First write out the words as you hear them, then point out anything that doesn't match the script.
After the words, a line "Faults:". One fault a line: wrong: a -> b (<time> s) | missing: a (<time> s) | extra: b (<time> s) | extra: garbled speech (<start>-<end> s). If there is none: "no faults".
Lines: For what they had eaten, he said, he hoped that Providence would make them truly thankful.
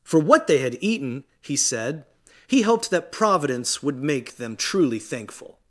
For what they had eaten, he said, he hoped that Providence would make them truly thankful.
Faults:
no faults